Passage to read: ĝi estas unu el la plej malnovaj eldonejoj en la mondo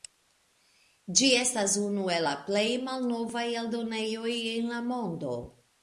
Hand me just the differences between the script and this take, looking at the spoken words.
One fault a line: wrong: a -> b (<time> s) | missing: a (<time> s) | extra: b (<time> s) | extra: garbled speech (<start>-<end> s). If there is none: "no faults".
no faults